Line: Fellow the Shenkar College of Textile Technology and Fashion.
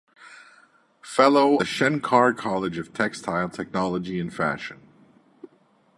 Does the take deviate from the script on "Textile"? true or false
false